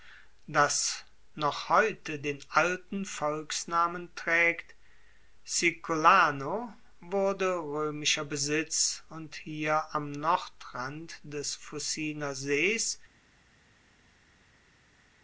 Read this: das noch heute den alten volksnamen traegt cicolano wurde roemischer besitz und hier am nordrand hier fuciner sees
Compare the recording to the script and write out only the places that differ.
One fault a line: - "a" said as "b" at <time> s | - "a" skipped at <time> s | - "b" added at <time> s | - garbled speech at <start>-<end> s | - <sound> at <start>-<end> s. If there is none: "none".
- "hier" said as "des" at 11.2 s